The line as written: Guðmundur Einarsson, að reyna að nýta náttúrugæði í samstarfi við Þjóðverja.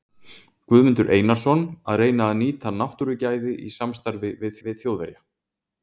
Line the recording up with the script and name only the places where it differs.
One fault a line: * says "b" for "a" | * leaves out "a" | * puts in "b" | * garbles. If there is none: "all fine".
* puts in "við"